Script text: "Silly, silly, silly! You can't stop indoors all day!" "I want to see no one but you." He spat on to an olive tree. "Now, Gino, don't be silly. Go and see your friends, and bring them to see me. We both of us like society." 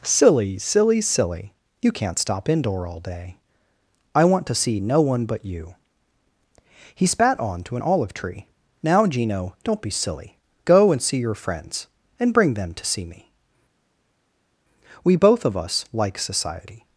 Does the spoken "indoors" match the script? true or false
false